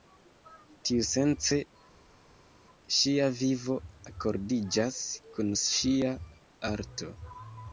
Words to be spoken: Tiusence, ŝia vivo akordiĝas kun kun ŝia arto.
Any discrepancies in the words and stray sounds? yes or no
yes